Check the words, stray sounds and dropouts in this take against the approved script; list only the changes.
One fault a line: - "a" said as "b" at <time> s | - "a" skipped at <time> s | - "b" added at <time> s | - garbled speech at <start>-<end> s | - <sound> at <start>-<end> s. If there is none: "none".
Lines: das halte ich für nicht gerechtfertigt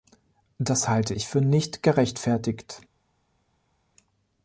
none